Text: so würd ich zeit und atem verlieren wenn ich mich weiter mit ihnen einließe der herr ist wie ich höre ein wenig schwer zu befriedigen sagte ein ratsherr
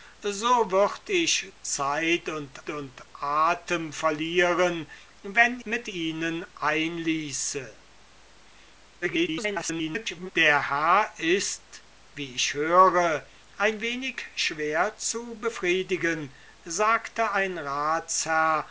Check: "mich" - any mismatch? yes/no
yes